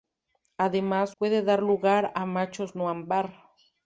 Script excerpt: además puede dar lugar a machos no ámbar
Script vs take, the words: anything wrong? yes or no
no